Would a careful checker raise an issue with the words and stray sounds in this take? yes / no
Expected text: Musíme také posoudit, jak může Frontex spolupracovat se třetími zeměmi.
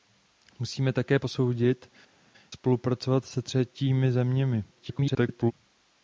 yes